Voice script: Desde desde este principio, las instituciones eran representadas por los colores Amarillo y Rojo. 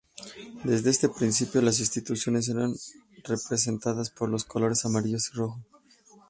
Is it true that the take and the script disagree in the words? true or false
true